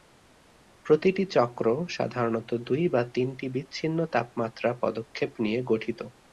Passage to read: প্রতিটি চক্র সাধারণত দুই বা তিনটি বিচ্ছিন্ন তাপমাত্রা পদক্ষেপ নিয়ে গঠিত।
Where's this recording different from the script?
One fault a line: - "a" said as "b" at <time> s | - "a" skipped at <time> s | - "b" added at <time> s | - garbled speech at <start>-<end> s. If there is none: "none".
none